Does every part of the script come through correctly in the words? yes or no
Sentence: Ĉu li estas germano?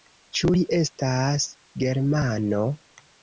yes